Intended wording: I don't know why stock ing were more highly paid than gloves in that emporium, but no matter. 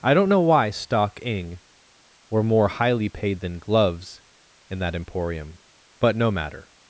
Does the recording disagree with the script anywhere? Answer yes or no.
no